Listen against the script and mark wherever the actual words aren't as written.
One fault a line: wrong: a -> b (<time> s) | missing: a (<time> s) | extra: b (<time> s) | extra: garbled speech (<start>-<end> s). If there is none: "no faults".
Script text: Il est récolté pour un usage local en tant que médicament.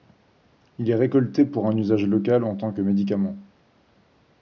no faults